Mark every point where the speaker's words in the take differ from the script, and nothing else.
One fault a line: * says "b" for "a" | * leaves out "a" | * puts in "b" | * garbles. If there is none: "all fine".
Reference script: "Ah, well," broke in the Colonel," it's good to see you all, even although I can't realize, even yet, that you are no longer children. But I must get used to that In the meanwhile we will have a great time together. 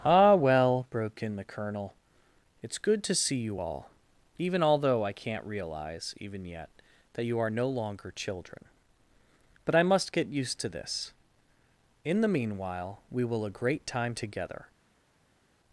* says "this" for "that"
* leaves out "have"